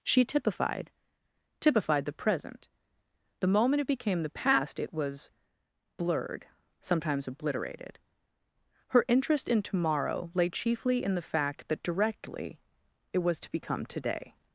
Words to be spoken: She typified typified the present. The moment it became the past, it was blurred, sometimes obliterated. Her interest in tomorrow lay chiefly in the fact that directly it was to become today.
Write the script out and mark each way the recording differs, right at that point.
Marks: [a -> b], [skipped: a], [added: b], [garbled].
She typified typified the present. The moment it became the past, it was blurred, sometimes obliterated. Her interest in tomorrow lay chiefly in the fact that directly it was to become today.